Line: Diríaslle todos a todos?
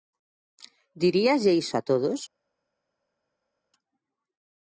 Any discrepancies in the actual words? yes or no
yes